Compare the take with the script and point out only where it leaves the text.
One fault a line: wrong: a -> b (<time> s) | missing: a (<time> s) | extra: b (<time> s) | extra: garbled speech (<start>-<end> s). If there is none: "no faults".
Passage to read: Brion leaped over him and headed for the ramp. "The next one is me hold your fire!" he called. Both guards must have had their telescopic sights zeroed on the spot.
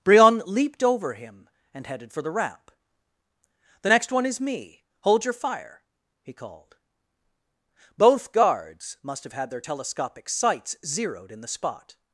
wrong: on -> in (11.3 s)